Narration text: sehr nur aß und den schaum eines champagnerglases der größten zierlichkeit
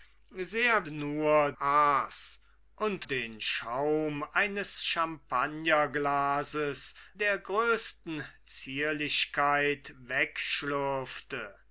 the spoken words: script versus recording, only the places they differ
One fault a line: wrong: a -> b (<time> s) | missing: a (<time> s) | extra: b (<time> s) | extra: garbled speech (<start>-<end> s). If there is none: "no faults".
no faults